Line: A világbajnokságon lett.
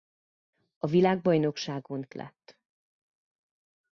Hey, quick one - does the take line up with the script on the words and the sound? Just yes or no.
yes